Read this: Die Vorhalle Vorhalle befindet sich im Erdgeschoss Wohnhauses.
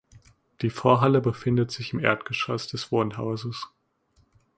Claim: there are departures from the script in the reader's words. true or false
true